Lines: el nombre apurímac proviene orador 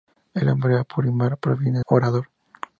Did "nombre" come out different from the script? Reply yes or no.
no